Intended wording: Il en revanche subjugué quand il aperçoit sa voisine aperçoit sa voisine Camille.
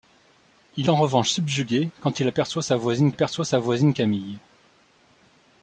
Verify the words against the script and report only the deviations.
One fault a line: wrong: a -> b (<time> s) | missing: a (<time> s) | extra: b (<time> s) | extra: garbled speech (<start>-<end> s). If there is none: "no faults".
no faults